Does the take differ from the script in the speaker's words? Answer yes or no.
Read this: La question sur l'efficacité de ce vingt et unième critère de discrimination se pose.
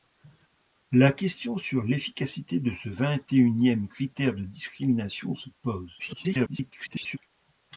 yes